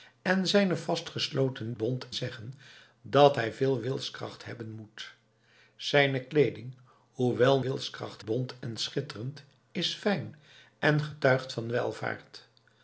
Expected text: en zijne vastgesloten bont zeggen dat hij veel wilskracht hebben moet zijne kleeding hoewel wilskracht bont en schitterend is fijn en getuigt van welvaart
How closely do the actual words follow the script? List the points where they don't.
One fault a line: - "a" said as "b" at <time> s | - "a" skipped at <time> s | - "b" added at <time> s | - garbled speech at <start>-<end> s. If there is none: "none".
none